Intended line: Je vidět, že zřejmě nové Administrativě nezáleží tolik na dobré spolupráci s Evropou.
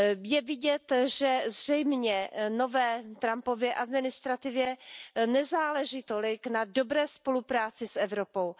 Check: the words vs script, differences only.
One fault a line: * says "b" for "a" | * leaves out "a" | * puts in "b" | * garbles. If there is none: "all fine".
* puts in "Trumpově"